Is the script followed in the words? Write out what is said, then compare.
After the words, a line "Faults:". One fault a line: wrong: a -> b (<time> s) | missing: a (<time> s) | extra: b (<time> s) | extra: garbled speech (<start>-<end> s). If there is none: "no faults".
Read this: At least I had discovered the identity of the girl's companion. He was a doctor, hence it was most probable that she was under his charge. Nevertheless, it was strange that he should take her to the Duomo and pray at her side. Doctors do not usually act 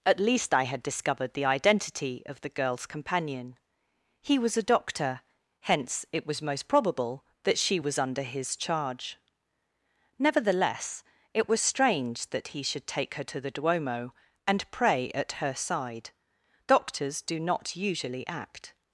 At least I had discovered the identity of the girl's companion. He was a doctor, hence it was most probable that she was under his charge. Nevertheless, it was strange that he should take her to the Duomo and pray at her side. Doctors do not usually act
Faults:
no faults